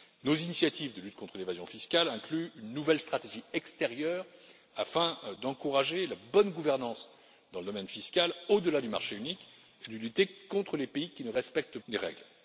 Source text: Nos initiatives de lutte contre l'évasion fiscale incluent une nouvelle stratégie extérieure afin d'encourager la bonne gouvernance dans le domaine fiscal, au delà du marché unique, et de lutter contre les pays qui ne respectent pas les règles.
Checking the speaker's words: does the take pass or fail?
fail